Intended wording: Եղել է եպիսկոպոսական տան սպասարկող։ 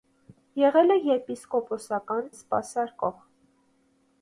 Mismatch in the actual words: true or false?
true